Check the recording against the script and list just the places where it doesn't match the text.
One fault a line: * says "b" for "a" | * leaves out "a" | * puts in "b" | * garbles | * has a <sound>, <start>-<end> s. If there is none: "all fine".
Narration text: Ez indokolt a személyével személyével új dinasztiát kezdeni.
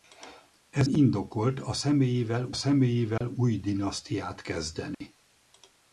* has a dropout, 3.2-3.2 s
* has a dropout, 4.9-5.0 s